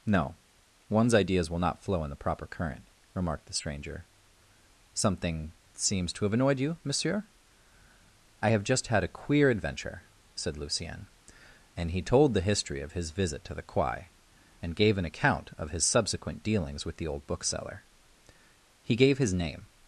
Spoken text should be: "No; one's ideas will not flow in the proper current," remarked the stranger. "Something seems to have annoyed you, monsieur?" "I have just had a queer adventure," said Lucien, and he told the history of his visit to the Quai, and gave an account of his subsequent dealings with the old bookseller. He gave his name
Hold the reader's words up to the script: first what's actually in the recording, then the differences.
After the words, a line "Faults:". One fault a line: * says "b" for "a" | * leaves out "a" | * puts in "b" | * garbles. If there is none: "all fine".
"No; one's ideas will not flow in the proper current," remarked the stranger. "Something seems to have annoyed you, monsieur?" "I have just had a queer adventure," said Lucien, and he told the history of his visit to the Quai, and gave an account of his subsequent dealings with the old bookseller. He gave his name
Faults:
all fine